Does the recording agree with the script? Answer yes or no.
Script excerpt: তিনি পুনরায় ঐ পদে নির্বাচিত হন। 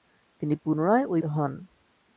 no